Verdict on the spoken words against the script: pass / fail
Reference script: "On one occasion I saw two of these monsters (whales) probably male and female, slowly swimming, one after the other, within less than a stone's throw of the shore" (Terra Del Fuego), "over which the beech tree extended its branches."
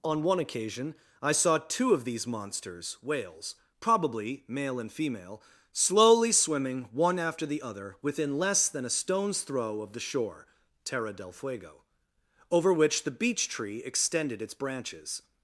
pass